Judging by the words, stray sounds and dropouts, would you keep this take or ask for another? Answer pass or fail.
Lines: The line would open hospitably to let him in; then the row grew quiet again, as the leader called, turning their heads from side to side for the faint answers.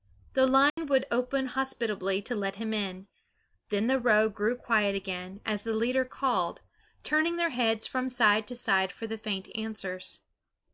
fail